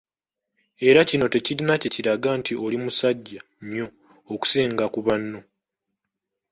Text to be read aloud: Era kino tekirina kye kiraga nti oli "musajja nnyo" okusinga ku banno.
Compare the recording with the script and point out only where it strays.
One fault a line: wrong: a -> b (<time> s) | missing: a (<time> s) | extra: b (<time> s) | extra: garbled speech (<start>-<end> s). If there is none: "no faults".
no faults